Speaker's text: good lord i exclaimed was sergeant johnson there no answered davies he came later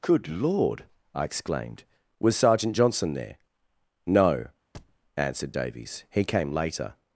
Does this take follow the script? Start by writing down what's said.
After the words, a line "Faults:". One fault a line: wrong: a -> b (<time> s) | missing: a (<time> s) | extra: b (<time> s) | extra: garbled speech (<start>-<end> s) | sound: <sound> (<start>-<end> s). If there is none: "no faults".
good lord i exclaimed was sergeant johnson there no answered davies he came later
Faults:
sound: thud (4.7-5.0 s)